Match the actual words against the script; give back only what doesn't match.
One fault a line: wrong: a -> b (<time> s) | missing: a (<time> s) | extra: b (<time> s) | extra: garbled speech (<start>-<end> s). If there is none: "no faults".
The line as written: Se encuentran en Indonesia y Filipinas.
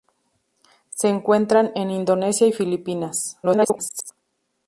extra: garbled speech (3.4-4.1 s)